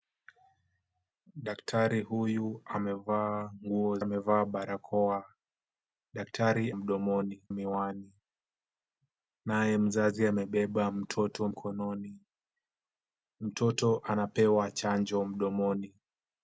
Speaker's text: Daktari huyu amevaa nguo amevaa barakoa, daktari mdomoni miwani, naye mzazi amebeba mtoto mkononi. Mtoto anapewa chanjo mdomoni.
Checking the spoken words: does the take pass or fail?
pass